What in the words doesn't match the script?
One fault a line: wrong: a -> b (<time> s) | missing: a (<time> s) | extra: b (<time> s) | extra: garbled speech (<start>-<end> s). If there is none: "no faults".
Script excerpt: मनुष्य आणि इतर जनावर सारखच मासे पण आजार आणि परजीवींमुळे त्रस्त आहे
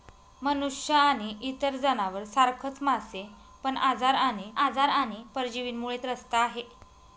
extra: आजार आणि (4.6 s)